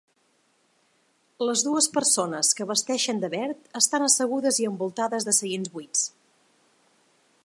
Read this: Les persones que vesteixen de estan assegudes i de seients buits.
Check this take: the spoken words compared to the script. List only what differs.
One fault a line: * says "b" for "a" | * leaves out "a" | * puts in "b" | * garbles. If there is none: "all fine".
* puts in "dues"
* puts in "verd"
* puts in "envoltades"